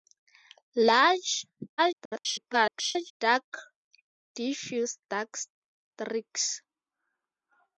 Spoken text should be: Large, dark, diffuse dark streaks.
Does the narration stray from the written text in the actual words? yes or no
yes